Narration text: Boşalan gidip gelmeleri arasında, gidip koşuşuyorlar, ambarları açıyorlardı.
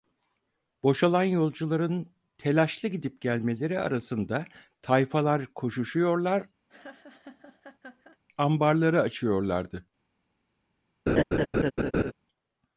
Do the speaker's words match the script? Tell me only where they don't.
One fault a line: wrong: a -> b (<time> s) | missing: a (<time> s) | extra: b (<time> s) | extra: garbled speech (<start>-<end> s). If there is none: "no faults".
extra: yolcuların telaşlı (1.2 s)
wrong: gidip -> tayfalar (4.8 s)